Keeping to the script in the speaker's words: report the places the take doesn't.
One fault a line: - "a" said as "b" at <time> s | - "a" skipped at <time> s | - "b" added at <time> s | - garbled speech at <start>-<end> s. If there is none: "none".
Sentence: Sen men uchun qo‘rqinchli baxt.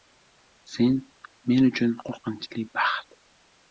none